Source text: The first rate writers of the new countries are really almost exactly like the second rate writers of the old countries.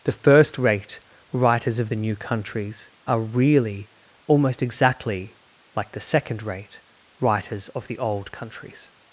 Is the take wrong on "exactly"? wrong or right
right